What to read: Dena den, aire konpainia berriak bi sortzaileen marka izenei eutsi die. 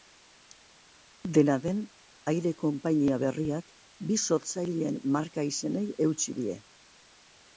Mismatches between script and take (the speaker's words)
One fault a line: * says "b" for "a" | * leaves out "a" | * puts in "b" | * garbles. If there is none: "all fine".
all fine